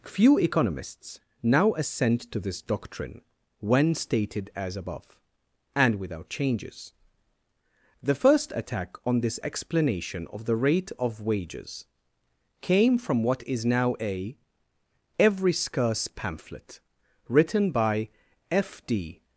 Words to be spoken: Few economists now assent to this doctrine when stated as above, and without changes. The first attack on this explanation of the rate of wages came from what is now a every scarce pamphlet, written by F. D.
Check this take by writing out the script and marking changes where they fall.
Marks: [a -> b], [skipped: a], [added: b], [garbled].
Few economists now assent to this doctrine when stated as above, and without changes. The first attack on this explanation of the rate of wages came from what is now a every scarce pamphlet, written by F. D.